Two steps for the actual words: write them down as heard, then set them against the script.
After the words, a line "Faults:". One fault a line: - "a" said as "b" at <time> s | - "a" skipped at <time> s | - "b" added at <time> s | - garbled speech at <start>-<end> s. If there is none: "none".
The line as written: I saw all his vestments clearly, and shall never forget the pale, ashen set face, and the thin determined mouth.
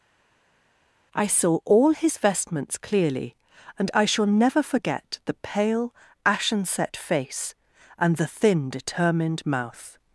I saw all his vestments clearly, and I shall never forget the pale, ashen set face, and the thin determined mouth.
Faults:
- "I" added at 3.9 s